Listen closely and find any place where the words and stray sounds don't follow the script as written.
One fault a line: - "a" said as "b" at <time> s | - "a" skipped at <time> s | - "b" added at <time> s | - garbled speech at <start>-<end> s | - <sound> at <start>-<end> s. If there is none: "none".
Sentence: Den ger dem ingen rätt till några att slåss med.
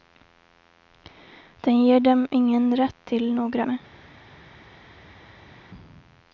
- "att slåss" skipped at 3.6 s